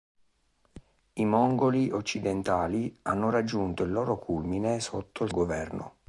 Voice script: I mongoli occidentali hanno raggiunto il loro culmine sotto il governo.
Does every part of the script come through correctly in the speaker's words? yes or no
yes